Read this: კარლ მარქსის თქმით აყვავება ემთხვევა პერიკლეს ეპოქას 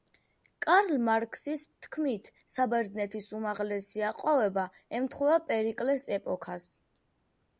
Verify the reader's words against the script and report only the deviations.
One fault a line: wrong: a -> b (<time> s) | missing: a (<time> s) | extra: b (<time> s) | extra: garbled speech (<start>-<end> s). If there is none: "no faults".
extra: საბერძნეთის უმაღლესი (2.5 s)